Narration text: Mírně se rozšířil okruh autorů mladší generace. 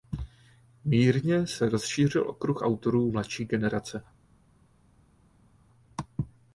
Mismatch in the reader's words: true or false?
false